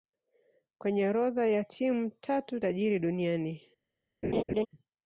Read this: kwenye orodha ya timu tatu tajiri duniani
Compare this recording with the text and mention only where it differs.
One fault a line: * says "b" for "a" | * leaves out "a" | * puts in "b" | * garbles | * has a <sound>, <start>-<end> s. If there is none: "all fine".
* has a laugh, 4.2-4.7 s